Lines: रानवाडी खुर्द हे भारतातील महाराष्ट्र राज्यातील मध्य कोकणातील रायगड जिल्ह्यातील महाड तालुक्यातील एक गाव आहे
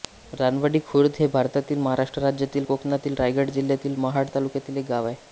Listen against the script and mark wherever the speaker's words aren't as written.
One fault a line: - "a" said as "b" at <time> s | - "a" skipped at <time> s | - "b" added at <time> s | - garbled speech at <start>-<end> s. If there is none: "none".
- "मध्य" skipped at 2.6 s